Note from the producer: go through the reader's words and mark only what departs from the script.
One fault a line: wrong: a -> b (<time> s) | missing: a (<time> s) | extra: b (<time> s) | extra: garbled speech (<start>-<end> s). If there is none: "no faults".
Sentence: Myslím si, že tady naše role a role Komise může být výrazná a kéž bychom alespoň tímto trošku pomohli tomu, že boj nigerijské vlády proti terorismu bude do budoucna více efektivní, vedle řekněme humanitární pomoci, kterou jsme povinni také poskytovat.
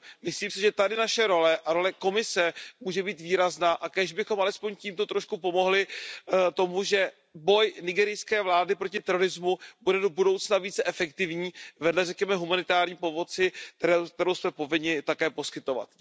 no faults